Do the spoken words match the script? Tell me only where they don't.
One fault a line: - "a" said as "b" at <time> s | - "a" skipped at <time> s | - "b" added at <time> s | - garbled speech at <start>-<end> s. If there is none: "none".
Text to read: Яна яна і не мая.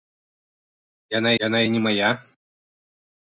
none